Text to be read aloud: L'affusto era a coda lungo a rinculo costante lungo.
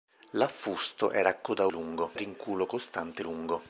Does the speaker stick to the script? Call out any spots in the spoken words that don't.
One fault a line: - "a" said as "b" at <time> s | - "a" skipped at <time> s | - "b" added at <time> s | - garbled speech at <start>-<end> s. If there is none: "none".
none